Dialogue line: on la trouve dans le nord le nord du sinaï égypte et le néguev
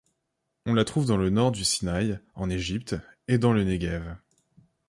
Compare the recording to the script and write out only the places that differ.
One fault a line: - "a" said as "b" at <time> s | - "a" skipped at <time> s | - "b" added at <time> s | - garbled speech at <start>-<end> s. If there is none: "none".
- "le nord" skipped at 1.5 s
- "en" added at 2.3 s
- "dans" added at 3.4 s